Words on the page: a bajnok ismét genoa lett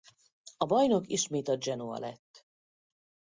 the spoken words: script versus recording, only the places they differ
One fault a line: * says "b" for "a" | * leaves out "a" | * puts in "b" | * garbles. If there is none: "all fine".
* puts in "a"